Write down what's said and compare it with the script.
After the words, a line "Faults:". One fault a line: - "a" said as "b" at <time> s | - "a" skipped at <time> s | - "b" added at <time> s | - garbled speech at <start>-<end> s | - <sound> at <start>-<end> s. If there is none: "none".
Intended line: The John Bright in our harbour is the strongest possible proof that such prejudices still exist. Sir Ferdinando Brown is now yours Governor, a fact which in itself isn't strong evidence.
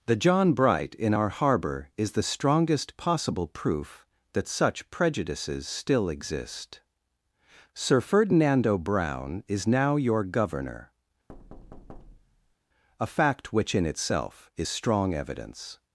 The John Bright in our harbour is the strongest possible proof that such prejudices still exist. Sir Ferdinando Brown is now your Governor, a fact which in itself is strong evidence.
Faults:
- "yours" said as "your" at 10.0 s
- thud at 11.3-12.6 s
- "isn't" said as "is" at 14.6 s